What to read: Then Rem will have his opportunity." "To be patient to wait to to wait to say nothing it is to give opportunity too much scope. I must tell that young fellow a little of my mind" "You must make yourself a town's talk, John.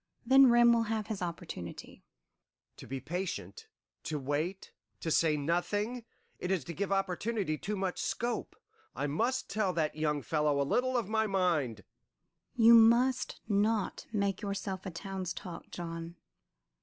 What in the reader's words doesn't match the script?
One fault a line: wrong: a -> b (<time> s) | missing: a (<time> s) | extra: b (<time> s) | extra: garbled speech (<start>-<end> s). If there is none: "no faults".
missing: to wait to (5.1 s)
extra: not (13.5 s)